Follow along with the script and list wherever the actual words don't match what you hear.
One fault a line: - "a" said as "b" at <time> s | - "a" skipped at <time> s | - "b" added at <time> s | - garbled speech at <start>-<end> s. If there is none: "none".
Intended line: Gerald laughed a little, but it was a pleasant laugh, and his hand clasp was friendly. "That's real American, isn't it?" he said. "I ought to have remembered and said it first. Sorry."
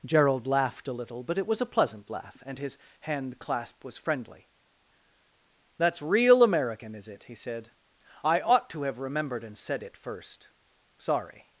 - "isn't" said as "is" at 7.0 s